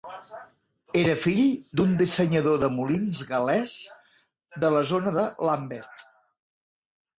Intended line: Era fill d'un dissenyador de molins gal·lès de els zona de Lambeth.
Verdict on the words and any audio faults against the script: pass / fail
fail